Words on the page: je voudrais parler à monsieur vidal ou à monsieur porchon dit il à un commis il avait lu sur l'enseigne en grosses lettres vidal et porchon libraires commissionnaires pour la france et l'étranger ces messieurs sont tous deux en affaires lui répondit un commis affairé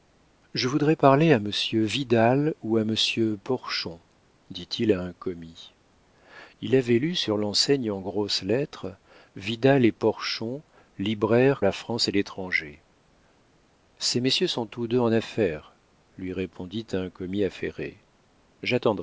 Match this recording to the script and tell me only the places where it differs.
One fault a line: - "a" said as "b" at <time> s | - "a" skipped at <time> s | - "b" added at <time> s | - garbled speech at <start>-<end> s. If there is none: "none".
- "commissionnaires pour" skipped at 11.6 s